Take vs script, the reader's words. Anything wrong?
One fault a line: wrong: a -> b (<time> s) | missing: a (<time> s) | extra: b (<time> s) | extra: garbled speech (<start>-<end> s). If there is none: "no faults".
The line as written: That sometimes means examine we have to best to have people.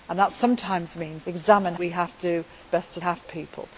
no faults